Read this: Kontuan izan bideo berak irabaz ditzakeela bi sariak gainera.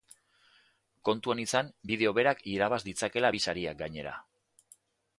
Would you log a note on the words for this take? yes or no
no